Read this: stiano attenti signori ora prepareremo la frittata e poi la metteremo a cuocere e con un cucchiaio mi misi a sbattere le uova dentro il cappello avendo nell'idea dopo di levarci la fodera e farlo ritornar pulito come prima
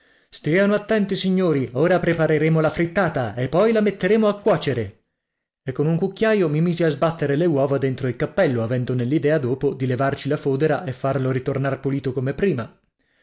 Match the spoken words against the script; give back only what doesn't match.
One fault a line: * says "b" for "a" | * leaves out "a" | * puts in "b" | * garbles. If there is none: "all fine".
all fine